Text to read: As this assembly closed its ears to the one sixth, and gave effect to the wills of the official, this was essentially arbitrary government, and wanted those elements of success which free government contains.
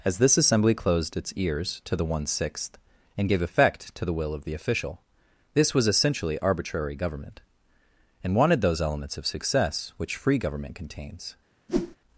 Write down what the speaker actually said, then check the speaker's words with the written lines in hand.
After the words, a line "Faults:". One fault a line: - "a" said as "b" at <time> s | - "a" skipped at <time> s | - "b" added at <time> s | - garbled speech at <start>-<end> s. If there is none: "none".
As this assembly closed its ears to the one sixth, and gave effect to the will of the official, this was essentially arbitrary government, and wanted those elements of success which free government contains.
Faults:
- "wills" said as "will" at 4.1 s